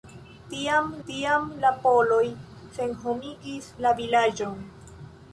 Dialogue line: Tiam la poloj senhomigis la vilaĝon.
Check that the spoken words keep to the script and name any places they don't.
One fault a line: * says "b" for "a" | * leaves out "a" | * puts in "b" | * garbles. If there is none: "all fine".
* puts in "tiam"